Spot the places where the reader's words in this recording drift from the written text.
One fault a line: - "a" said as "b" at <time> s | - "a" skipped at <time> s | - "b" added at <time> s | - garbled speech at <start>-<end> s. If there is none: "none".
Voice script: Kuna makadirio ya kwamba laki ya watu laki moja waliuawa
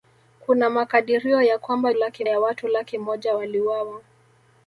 none